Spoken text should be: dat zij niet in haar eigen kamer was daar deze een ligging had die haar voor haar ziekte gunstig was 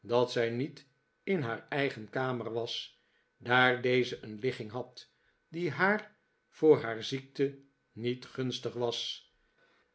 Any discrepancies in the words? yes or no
yes